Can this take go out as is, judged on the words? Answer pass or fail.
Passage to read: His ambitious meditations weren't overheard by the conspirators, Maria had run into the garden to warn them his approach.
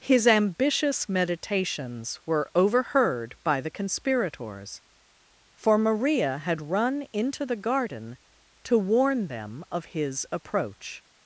fail